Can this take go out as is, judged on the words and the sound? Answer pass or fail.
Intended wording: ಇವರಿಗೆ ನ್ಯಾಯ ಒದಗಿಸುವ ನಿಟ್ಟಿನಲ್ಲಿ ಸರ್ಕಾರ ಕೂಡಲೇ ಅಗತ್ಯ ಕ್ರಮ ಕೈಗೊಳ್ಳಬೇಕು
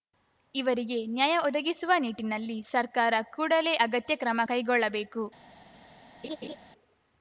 fail